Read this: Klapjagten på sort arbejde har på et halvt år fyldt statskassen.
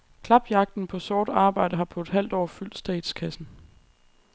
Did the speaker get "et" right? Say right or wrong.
right